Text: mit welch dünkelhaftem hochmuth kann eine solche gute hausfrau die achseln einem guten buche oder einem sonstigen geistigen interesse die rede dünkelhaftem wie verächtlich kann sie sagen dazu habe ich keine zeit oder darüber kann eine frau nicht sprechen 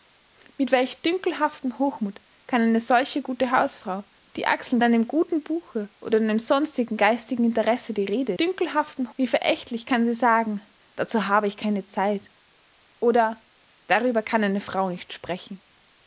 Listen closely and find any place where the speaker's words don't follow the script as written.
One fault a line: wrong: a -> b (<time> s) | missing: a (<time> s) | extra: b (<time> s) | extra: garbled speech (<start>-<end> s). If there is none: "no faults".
no faults